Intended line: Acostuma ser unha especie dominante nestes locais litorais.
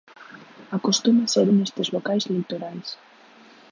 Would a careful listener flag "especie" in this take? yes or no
yes